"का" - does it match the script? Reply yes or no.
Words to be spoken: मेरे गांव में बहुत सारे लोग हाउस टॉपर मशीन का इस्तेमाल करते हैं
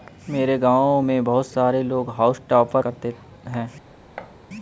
no